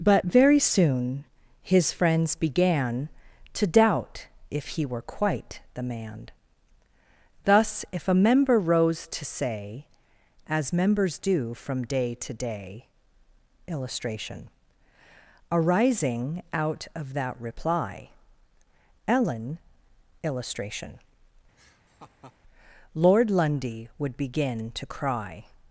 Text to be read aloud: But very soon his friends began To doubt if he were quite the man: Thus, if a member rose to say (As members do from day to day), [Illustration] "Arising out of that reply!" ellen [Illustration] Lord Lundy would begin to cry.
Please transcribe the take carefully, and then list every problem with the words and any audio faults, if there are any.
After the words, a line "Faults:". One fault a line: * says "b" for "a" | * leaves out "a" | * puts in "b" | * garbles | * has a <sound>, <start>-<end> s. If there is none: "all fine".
But very soon his friends began To doubt if he were quite the man: Thus, if a member rose to say (As members do from day to day), [Illustration] "Arising out of that reply!" ellen [Illustration] Lord Lundy would begin to cry.
Faults:
* has a laugh, 21.6-22.4 s